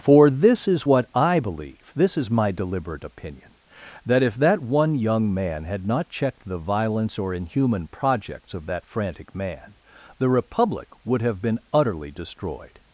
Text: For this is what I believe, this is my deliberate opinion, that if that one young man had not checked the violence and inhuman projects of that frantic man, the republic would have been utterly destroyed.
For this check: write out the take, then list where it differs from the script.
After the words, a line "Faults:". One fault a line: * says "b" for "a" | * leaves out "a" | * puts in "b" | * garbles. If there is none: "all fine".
For this is what I believe, this is my deliberate opinion, that if that one young man had not checked the violence or inhuman projects of that frantic man, the republic would have been utterly destroyed.
Faults:
* says "or" for "and"